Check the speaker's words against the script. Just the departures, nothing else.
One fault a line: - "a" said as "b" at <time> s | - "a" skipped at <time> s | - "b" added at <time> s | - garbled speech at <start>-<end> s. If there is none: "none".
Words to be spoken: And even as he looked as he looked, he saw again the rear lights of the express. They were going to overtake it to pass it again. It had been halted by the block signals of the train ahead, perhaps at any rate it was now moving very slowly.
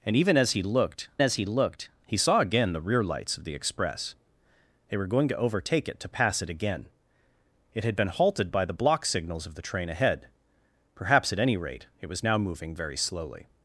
none